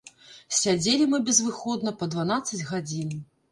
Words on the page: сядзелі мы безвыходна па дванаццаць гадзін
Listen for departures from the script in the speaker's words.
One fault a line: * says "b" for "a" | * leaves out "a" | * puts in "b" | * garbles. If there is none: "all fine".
all fine